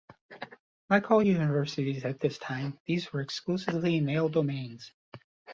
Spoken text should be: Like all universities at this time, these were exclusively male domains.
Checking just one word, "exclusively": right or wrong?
right